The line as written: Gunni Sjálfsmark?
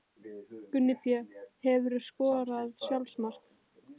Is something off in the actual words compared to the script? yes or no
yes